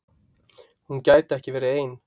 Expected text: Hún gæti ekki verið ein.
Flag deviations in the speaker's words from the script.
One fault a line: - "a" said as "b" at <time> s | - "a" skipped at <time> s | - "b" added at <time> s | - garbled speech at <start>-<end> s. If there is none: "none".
none